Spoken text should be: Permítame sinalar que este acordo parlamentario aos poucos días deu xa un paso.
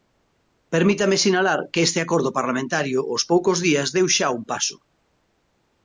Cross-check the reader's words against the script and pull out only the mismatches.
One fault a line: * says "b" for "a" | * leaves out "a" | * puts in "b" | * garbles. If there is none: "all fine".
all fine